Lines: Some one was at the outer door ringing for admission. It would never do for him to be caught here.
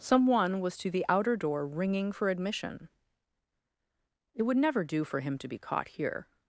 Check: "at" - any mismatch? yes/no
yes